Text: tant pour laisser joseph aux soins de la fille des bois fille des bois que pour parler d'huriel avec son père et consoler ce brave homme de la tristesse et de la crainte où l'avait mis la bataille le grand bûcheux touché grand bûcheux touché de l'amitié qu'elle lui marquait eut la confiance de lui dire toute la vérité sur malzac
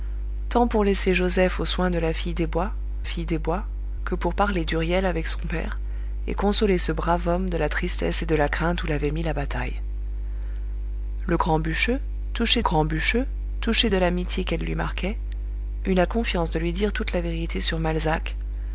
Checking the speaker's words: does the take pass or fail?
pass